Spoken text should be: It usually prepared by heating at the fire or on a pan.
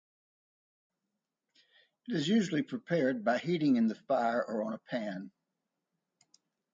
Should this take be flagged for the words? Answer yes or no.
yes